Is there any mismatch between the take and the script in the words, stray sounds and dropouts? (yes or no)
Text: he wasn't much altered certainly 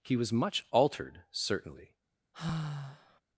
yes